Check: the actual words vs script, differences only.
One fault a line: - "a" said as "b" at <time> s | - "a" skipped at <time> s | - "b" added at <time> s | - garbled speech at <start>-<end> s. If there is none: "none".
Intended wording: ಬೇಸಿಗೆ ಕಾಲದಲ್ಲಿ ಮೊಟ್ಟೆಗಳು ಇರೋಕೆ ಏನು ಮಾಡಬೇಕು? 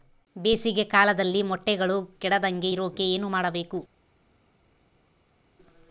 - "ಕೆಡದಂಗೆ" added at 2.2 s